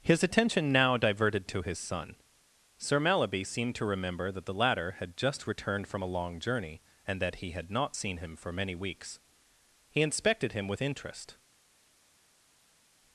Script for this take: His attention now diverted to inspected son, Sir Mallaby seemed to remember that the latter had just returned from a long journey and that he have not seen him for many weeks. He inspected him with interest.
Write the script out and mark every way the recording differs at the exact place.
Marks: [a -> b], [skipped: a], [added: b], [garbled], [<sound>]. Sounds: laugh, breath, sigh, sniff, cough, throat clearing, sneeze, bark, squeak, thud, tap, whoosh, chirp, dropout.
His attention now diverted to [inspected -> his] son, Sir Mallaby seemed to remember that the latter had just returned from a long journey and that he [have -> had] not seen him for many weeks. He inspected him with interest.